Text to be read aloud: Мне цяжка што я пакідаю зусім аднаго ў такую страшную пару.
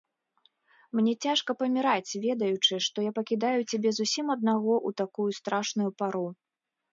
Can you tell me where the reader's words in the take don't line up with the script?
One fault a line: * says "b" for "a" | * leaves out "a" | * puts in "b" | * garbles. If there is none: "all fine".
* puts in "паміраць ведаючы"
* puts in "цябе"